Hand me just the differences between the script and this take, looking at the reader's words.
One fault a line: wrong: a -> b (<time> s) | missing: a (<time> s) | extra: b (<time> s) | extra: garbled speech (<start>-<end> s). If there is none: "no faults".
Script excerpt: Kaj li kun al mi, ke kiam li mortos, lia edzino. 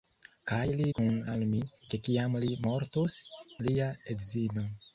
no faults